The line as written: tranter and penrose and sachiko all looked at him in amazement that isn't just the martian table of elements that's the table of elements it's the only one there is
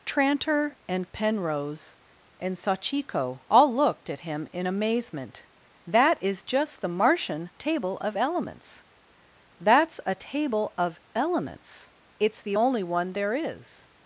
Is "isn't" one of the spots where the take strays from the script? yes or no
yes